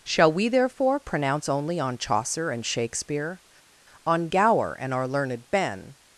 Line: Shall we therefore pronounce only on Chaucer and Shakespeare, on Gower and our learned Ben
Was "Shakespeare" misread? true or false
false